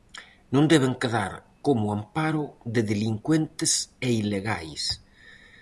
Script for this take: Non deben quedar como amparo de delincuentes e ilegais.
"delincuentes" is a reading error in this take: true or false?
false